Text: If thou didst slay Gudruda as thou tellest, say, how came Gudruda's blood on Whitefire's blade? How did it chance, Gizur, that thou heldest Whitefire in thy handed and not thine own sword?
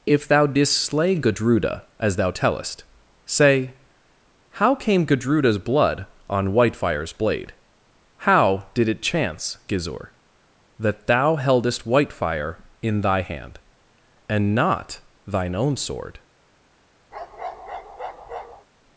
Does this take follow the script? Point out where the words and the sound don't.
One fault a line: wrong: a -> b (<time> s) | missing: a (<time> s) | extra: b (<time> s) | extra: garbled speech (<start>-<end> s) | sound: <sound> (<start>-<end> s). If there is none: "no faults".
wrong: handed -> hand (13.2 s)
sound: bark (17.1-18.7 s)